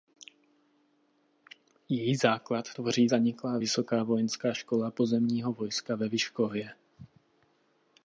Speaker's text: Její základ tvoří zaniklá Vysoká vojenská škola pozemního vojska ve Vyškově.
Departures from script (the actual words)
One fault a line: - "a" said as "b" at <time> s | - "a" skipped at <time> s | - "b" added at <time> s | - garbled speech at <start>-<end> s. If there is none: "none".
none